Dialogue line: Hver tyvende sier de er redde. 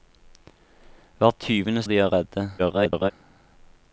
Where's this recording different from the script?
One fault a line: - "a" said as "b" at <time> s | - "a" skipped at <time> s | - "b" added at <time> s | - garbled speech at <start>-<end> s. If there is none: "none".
- "sier" skipped at 1.8 s
- garbled speech at 2.6-3.1 s